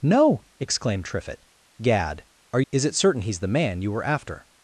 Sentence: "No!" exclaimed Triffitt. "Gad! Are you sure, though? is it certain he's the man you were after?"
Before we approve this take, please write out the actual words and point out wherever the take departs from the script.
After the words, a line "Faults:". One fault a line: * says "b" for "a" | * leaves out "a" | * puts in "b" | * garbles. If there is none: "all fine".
"No!" exclaimed Triffitt. "Gad! Are? is it certain he's the man you were after?"
Faults:
* leaves out "you sure though"